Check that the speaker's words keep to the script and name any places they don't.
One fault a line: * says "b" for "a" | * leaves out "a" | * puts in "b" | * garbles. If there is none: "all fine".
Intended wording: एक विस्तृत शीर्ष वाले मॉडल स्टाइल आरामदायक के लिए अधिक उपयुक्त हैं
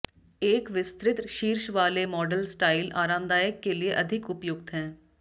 all fine